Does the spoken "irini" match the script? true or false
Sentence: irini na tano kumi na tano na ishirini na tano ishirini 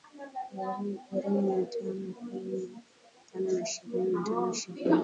true